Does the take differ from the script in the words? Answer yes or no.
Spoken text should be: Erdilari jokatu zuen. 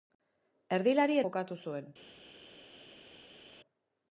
no